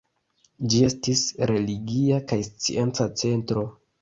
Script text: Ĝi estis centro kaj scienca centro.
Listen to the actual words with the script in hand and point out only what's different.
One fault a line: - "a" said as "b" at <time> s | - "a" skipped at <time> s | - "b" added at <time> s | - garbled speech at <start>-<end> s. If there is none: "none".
- "centro" said as "religia" at 1.5 s